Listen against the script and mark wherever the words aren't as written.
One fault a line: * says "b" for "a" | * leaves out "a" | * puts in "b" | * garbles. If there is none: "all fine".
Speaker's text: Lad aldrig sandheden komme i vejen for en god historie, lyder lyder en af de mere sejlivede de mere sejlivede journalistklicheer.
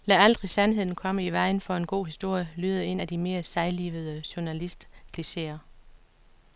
* leaves out "lyder"
* leaves out "de mere sejlivede"